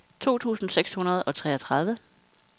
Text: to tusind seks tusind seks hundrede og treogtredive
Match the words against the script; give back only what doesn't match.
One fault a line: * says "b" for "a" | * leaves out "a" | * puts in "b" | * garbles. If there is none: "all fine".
* leaves out "tusind seks"